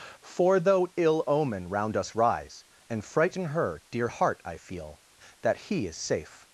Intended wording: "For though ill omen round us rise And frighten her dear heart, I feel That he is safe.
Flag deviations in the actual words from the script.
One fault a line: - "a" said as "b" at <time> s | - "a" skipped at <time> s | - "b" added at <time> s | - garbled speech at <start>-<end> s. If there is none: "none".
none